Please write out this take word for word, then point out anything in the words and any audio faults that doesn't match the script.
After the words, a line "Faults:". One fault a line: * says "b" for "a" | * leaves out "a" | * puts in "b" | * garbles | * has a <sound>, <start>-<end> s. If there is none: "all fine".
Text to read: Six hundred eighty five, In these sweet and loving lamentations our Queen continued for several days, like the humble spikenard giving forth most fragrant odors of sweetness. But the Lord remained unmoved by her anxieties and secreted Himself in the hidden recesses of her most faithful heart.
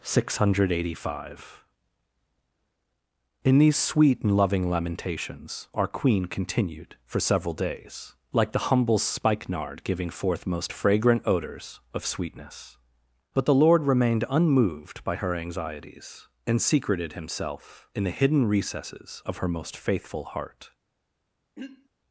Six hundred eighty five, In these sweet and loving lamentations our Queen continued for several days, like the humble spikenard giving forth most fragrant odors of sweetness. But the Lord remained unmoved by her anxieties and secreted Himself in the hidden recesses of her most faithful heart.
Faults:
* has a throat clearing, 21.5-21.9 s